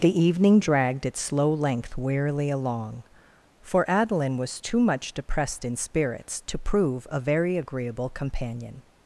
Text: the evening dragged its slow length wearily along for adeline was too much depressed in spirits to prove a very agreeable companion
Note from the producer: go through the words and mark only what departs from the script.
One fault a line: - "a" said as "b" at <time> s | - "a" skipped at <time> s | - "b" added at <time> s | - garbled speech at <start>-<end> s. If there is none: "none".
none